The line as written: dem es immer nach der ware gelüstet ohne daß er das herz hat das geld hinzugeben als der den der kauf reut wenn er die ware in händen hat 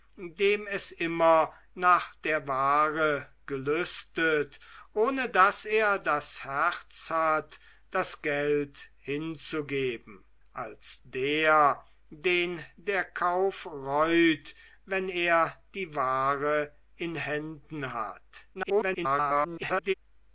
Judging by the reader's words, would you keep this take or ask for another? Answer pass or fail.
fail